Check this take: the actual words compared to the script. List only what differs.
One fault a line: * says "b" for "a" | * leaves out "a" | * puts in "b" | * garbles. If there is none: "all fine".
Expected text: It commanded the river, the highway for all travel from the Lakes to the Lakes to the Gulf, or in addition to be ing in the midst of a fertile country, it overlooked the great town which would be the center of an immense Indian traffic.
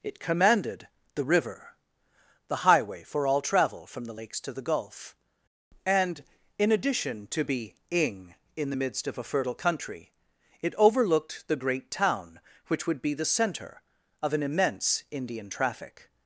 * leaves out "Lakes to the"
* says "and" for "or"